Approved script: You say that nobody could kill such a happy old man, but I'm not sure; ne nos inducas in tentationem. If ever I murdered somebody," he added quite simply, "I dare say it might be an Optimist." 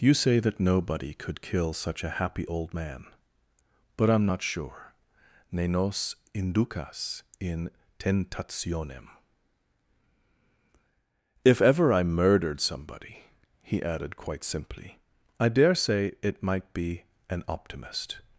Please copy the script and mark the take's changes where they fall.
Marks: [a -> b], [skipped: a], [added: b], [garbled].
You say that nobody could kill such a happy old man, but I'm not sure; ne nos inducas in tentationem. If ever I murdered somebody," he added quite simply, "I dare say it might be an Optimist."